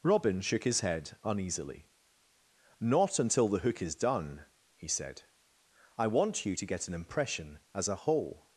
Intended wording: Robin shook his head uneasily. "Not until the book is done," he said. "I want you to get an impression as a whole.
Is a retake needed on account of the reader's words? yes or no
yes